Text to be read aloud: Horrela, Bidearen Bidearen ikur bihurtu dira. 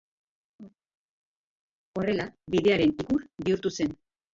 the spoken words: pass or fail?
fail